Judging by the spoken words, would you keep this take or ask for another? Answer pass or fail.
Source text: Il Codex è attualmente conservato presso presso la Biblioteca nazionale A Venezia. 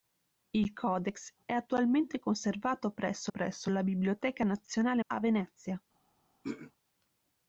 pass